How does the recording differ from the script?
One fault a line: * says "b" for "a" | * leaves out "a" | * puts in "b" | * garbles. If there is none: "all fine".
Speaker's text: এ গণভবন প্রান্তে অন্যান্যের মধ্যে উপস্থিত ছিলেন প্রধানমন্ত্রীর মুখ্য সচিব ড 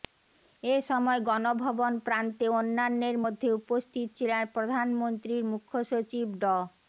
* puts in "সময়"